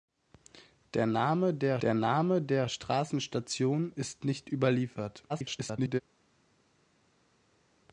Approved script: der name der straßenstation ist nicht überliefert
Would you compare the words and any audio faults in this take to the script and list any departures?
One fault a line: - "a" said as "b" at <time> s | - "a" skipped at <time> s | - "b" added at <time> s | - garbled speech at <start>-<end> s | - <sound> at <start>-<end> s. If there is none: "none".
- "der name der" added at 1.8 s
- garbled speech at 5.3-6.0 s